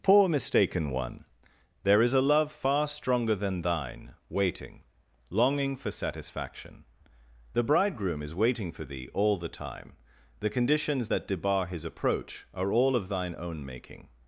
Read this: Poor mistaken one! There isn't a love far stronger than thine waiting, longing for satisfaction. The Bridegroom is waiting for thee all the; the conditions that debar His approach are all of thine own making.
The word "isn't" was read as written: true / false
false